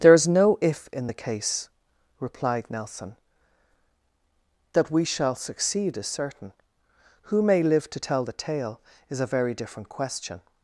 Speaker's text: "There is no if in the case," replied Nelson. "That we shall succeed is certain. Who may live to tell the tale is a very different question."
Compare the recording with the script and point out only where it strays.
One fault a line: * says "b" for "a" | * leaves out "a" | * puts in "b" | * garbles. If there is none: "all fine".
all fine